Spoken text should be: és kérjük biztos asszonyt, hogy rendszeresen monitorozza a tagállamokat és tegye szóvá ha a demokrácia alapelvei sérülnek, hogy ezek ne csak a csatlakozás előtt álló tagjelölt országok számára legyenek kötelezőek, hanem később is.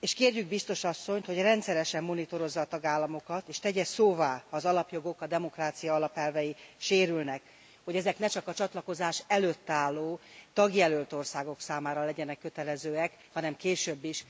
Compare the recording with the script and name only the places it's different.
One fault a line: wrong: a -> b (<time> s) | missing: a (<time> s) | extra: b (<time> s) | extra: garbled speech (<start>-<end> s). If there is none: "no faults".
extra: az alapjogok (4.5 s)